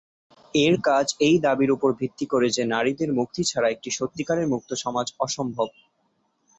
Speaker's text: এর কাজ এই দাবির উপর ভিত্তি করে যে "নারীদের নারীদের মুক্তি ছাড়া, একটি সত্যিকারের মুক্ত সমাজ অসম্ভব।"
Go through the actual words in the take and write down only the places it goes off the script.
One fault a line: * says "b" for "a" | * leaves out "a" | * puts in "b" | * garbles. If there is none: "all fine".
* leaves out "নারীদের"